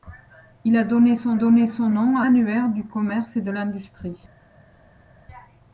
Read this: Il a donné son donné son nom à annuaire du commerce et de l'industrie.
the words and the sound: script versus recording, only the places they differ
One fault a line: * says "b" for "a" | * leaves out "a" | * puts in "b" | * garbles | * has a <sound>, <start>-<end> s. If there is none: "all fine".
all fine